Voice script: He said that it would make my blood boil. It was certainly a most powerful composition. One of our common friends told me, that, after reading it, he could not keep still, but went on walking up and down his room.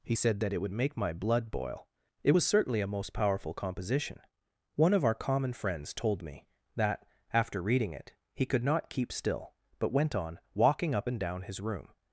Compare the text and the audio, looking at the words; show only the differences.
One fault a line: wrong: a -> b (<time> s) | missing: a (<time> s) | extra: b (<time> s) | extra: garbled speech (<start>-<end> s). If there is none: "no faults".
no faults